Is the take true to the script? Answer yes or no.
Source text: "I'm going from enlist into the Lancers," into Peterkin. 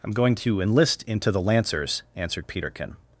no